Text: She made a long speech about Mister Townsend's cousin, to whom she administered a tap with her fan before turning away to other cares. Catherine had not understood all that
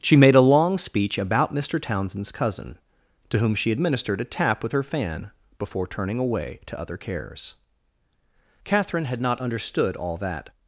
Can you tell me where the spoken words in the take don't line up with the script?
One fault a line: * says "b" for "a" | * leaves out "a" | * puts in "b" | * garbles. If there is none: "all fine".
all fine